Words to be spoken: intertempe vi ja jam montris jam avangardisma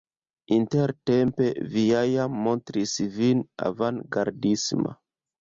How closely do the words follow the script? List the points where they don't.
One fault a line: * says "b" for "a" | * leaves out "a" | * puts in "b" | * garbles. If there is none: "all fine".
* says "vin" for "jam"